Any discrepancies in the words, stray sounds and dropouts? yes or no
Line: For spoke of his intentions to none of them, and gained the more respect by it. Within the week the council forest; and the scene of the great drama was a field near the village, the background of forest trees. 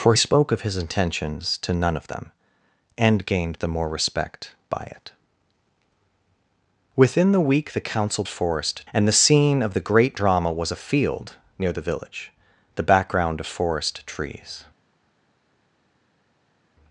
no